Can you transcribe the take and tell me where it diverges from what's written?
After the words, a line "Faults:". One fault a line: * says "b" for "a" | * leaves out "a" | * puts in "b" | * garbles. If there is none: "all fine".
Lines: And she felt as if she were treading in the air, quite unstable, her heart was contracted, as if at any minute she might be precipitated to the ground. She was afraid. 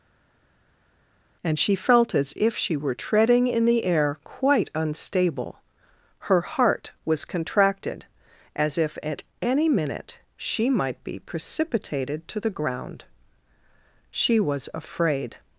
And she felt as if she were treading in the air, quite unstable, her heart was contracted, as if at any minute she might be precipitated to the ground. She was afraid.
Faults:
all fine